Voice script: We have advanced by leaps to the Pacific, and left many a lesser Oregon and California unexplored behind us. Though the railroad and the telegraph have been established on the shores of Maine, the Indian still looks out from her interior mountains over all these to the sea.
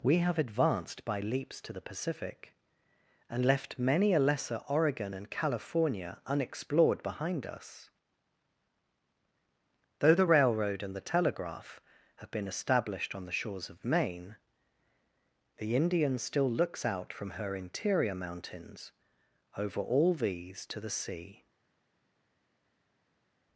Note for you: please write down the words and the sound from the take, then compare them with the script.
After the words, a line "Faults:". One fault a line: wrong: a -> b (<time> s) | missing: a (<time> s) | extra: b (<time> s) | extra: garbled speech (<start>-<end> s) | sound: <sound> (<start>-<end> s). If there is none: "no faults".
We have advanced by leaps to the Pacific, and left many a lesser Oregon and California unexplored behind us. Though the railroad and the telegraph have been established on the shores of Maine, the Indian still looks out from her interior mountains over all these to the sea.
Faults:
no faults